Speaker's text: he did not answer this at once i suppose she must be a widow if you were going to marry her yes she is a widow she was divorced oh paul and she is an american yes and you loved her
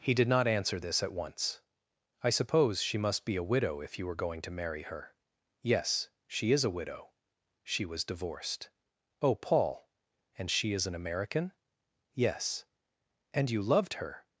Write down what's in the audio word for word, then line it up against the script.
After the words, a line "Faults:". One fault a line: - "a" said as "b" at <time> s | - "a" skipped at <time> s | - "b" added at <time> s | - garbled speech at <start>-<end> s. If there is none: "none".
he did not answer this at once i suppose she must be a widow if you were going to marry her yes she is a widow she was divorced oh paul and she is an american yes and you loved her
Faults:
none